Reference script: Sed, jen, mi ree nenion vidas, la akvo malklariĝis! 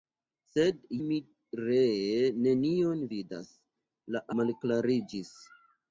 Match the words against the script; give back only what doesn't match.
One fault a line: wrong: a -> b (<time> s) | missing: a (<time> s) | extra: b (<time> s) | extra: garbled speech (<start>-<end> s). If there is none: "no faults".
missing: jen (0.8 s)
missing: akvo (4.3 s)